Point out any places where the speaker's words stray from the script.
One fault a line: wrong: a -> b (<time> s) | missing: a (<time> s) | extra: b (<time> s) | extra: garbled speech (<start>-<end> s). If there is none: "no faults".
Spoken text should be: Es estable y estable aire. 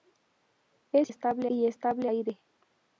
no faults